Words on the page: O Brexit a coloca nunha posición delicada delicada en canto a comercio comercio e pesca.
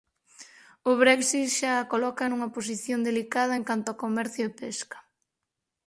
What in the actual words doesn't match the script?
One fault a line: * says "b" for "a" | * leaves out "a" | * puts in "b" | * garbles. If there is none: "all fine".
* puts in "xa"
* leaves out "delicada"
* leaves out "comercio"